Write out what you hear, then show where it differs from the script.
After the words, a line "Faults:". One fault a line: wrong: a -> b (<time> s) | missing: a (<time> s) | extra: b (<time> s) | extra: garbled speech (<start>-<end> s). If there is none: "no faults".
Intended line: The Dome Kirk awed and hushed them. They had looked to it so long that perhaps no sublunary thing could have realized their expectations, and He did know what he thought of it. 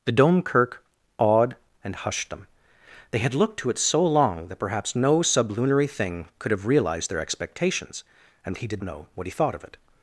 The Dome Kirk awed and hushed them. They had looked to it so long that perhaps no sublunary thing could have realized their expectations, and He did know what he thought of it.
Faults:
no faults